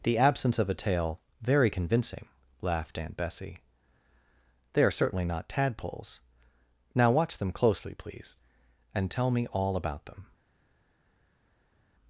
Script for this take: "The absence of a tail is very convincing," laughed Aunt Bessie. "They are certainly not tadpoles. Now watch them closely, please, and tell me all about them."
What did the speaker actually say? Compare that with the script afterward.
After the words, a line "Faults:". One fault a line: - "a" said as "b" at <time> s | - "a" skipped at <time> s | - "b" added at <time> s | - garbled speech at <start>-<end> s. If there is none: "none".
"The absence of a tail very convincing," laughed Aunt Bessie. "They are certainly not tadpoles. Now watch them closely, please, and tell me all about them."
Faults:
- "is" skipped at 1.2 s